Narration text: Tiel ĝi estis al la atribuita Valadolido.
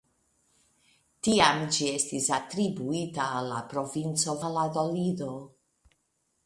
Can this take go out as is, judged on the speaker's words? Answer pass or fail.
fail